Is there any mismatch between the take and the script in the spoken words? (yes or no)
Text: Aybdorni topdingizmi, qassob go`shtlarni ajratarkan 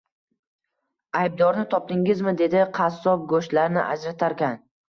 yes